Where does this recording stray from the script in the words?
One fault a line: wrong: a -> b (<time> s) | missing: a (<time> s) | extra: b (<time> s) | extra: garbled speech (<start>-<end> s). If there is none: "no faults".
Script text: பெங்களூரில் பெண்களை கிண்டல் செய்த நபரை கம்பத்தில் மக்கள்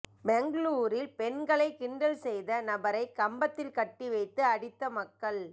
extra: கட்டி வைத்து அடித்த (3.8 s)